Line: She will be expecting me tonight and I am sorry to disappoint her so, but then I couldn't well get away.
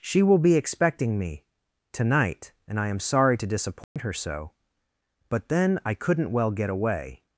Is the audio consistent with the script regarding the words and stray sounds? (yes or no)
no